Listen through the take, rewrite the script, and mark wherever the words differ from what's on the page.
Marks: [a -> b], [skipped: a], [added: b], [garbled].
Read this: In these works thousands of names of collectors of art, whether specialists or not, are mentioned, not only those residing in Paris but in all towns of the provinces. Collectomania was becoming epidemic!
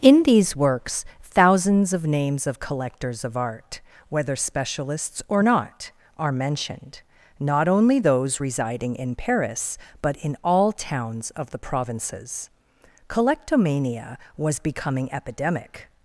In these works thousands of names of collectors of art, whether specialists or not, are mentioned, not only those residing in Paris but in all towns of the provinces. Collectomania was becoming epidemic!